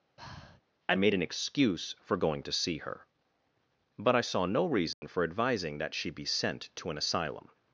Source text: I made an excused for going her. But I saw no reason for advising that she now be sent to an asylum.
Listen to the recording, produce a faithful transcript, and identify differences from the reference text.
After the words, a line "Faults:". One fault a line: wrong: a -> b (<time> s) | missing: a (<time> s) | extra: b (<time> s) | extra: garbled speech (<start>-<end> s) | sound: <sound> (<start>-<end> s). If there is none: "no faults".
I made an excuse for going to see her. But I saw no reason for advising that she be sent to an asylum.
Faults:
sound: breath (0.2-0.6 s)
wrong: excused -> excuse (1.2 s)
extra: to see (2.4 s)
sound: dropout (4.9-5.0 s)
missing: now (6.1 s)